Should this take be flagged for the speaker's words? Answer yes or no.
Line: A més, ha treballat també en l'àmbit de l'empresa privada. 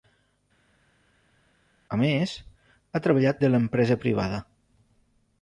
yes